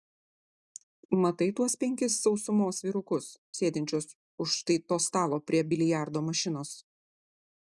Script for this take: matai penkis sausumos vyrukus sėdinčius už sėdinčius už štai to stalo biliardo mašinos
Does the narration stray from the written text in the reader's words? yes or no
yes